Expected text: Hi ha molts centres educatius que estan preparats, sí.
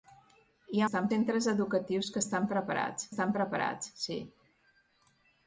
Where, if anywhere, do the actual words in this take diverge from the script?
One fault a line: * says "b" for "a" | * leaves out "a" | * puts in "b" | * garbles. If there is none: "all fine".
* says "estan" for "molts"
* puts in "estan preparats"